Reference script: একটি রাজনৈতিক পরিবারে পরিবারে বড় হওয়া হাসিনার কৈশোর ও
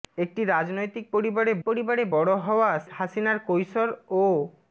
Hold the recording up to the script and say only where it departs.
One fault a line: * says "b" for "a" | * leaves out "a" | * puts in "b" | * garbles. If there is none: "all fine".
all fine